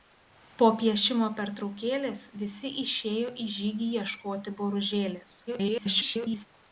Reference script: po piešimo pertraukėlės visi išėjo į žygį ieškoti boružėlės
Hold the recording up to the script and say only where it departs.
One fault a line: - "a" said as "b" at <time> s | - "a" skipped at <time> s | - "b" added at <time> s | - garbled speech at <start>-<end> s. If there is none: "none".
- garbled speech at 5.5-6.5 s